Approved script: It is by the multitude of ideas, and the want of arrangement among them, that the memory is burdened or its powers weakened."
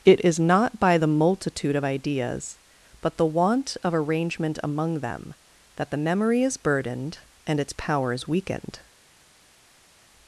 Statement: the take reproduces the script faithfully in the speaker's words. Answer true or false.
false